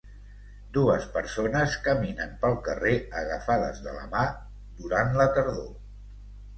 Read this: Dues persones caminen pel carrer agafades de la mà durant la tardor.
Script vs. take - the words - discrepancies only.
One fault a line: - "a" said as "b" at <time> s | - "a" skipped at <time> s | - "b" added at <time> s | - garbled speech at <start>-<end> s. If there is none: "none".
none